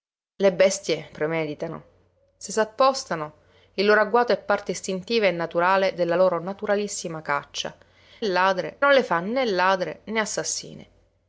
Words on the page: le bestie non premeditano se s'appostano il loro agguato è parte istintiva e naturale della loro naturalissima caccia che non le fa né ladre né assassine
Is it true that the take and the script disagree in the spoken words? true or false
true